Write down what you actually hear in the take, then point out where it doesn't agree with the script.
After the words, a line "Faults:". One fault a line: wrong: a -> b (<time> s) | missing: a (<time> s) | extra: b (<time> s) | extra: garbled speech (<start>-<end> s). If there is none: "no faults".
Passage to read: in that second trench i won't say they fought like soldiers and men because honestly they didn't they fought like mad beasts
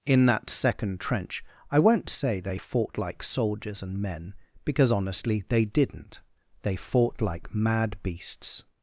in that second trench i won't say they fought like soldiers and men because honestly they didn't they fought like mad beasts
Faults:
no faults